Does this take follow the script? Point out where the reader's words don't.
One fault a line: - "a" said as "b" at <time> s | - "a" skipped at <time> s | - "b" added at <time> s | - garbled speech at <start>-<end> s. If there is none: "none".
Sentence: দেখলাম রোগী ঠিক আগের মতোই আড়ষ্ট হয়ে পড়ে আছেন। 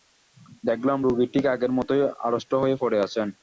none